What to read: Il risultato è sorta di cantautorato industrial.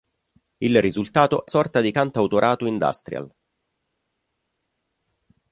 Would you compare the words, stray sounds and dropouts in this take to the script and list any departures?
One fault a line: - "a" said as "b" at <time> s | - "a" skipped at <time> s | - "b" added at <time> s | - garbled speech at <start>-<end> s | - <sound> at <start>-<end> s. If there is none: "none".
none